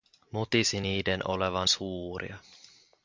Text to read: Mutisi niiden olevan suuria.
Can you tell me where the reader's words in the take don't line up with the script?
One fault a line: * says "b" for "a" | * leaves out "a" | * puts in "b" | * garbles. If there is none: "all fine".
all fine